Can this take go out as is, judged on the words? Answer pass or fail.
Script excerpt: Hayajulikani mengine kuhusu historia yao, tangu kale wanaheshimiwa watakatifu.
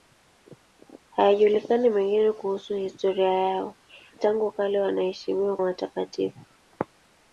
pass